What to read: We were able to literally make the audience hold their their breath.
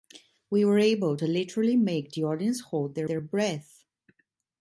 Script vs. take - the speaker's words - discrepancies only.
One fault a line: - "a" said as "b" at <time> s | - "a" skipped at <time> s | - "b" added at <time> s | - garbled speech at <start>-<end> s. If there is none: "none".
none